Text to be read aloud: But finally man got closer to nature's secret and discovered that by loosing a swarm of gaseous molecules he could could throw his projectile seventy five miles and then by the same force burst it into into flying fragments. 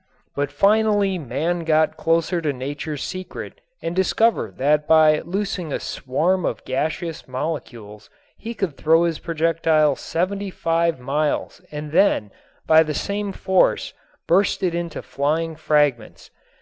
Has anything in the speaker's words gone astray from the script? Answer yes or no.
yes